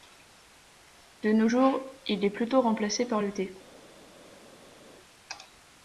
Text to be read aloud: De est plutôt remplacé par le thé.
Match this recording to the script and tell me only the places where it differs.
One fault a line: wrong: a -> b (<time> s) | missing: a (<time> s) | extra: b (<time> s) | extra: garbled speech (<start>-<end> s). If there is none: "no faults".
extra: nos jours il (1.3 s)